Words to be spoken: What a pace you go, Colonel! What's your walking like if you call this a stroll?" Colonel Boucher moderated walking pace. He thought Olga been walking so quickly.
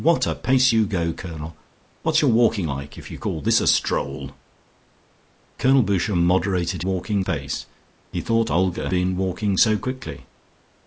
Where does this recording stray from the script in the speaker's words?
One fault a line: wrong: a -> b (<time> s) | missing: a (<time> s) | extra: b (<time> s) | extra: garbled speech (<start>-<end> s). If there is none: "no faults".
no faults